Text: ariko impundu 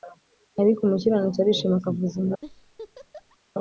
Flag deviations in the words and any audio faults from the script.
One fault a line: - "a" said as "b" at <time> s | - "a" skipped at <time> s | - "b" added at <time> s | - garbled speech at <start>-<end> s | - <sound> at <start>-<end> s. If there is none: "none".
- "umukiranutsi arishima akavuza" added at 0.8 s
- laugh at 2.4-3.4 s